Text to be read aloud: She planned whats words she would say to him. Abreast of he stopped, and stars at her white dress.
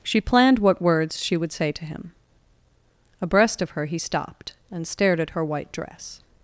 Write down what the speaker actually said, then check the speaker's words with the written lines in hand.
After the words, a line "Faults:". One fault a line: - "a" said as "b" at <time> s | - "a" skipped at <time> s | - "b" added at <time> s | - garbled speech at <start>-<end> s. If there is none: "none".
She planned what words she would say to him. Abreast of her he stopped, and stared at her white dress.
Faults:
- "whats" said as "what" at 0.6 s
- "her" added at 3.7 s
- "stars" said as "stared" at 4.9 s